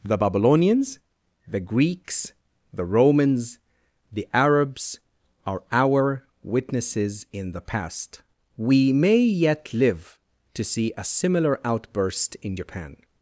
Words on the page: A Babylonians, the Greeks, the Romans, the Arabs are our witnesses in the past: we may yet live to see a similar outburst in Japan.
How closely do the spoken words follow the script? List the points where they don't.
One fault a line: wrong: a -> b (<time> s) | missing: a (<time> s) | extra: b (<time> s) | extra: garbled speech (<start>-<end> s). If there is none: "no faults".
wrong: A -> The (0.0 s)